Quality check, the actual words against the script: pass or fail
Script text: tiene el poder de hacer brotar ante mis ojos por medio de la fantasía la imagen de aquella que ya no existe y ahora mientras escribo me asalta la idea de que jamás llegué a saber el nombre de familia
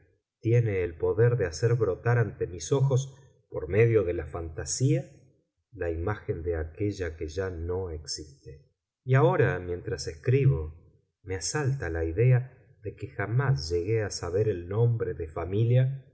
pass